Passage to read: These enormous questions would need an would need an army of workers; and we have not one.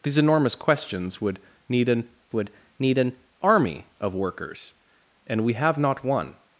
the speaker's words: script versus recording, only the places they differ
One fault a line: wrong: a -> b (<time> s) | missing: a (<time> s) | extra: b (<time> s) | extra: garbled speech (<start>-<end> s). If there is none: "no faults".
no faults